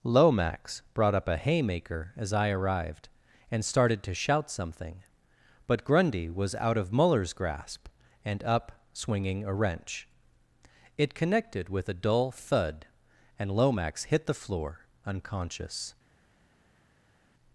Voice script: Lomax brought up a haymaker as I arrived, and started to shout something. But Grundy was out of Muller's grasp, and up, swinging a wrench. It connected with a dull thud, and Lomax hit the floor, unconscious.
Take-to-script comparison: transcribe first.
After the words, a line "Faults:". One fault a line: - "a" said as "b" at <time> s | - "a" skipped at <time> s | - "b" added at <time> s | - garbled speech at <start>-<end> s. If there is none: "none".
Lomax brought up a haymaker as I arrived, and started to shout something. But Grundy was out of Muller's grasp, and up, swinging a wrench. It connected with a dull thud, and Lomax hit the floor, unconscious.
Faults:
none